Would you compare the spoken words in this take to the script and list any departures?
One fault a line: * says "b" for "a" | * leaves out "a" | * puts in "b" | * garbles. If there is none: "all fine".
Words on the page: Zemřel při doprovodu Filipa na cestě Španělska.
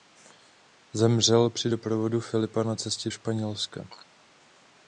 all fine